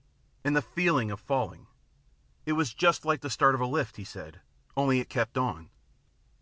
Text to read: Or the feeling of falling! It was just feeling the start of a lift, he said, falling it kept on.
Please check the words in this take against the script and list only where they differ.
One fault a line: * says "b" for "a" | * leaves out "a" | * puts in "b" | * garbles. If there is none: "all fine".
* says "And" for "Or"
* says "like" for "feeling"
* says "only" for "falling"